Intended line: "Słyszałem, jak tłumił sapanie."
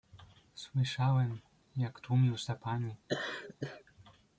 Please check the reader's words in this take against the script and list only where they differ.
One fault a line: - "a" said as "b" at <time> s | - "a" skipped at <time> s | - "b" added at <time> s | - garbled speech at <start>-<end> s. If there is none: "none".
none